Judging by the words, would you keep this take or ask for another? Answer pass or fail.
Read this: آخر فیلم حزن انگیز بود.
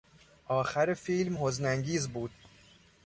pass